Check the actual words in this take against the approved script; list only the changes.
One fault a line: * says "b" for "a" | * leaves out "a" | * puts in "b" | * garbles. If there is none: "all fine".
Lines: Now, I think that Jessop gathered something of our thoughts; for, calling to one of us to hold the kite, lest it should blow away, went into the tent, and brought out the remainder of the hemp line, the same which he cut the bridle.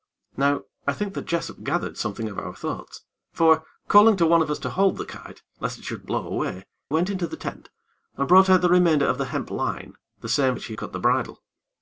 all fine